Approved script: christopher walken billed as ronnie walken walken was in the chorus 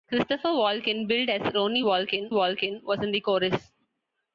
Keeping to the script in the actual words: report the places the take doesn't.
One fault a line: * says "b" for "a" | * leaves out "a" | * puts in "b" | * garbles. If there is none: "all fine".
all fine